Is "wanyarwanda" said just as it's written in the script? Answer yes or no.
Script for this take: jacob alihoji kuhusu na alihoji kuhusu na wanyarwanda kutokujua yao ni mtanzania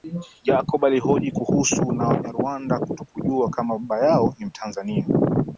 no